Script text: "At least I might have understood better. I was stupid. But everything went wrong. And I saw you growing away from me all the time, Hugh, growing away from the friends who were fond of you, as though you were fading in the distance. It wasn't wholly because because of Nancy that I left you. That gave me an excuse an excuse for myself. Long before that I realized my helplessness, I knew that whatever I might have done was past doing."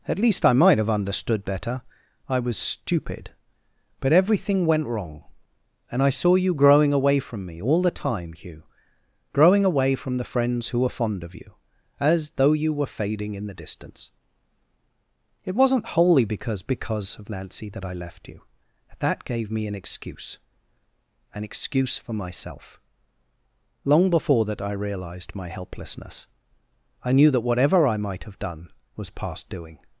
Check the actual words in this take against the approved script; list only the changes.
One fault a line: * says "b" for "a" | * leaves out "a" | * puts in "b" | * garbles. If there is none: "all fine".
all fine